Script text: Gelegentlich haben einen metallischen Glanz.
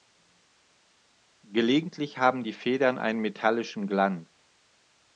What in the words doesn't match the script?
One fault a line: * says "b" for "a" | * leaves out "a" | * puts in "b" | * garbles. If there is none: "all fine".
* puts in "die Federn"